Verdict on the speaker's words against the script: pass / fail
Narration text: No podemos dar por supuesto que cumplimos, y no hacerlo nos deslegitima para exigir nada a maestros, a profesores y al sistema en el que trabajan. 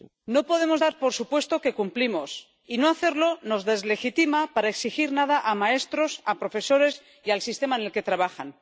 pass